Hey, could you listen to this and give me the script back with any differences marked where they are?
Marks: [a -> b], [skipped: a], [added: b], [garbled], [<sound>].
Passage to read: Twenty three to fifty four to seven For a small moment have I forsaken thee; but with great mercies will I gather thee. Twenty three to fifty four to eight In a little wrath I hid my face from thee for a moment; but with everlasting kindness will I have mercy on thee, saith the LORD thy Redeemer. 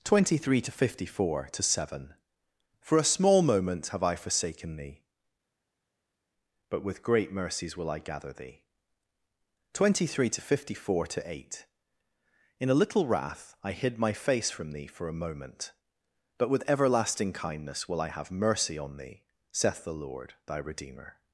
Twenty three to fifty four to seven For a small moment have I forsaken thee; but with great mercies will I gather thee. Twenty three to fifty four to eight In a little wrath I hid my face from thee for a moment; but with everlasting kindness will I have mercy on thee, saith the LORD thy Redeemer.